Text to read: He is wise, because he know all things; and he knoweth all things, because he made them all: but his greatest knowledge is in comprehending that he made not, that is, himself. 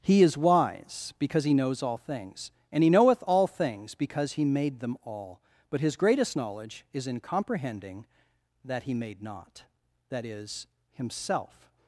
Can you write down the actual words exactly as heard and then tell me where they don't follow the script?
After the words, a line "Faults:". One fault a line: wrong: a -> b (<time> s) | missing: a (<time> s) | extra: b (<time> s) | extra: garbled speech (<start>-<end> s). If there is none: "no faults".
He is wise, because he knows all things; and he knoweth all things, because he made them all: but his greatest knowledge is in comprehending that he made not, that is, himself.
Faults:
wrong: know -> knows (1.5 s)